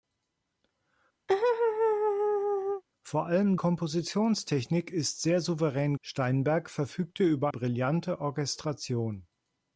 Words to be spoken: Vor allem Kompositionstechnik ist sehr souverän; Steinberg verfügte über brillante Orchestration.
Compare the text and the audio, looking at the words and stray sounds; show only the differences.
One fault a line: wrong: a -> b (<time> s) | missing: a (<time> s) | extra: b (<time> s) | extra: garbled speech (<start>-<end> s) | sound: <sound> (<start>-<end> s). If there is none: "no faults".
sound: laugh (1.3-2.8 s)